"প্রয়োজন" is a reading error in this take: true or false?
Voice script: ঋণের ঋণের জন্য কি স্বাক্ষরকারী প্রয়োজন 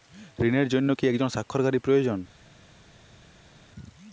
false